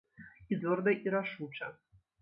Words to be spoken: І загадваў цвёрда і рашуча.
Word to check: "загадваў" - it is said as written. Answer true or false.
false